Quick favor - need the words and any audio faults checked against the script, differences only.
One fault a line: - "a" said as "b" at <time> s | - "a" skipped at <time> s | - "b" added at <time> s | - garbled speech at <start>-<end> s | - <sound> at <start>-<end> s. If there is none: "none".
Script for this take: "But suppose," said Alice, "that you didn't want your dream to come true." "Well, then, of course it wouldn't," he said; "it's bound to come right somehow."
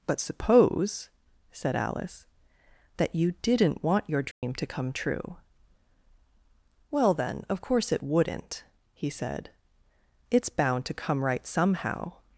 - dropout at 4.3-4.4 s